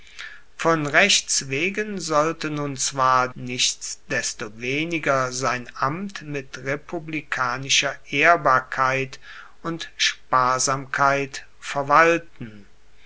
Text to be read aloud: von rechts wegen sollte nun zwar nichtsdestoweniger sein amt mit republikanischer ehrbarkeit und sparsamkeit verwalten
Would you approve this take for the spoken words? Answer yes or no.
yes